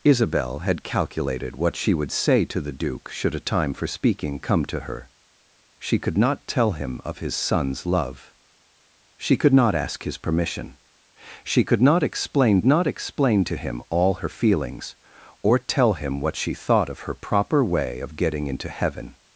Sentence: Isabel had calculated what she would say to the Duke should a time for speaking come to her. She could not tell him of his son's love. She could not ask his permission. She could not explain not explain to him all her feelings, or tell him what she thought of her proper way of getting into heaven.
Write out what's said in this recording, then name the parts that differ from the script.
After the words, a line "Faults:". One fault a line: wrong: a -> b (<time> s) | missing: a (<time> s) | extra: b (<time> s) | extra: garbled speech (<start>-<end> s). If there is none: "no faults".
Isabel had calculated what she would say to the Duke should a time for speaking come to her. She could not tell him of his son's love. She could not ask his permission. She could not explain not explain to him all her feelings, or tell him what she thought of her proper way of getting into heaven.
Faults:
no faults